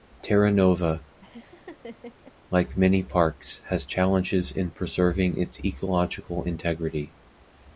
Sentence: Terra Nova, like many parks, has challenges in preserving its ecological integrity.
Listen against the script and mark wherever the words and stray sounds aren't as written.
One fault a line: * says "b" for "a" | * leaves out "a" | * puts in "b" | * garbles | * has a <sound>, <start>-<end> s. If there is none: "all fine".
* has a laugh, 1.2-2.3 s